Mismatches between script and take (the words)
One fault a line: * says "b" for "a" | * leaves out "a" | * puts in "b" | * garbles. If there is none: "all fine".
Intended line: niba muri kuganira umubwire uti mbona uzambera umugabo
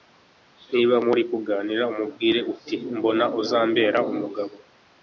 all fine